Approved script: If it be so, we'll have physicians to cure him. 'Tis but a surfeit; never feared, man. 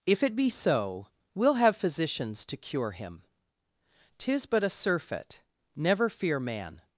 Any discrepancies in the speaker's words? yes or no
yes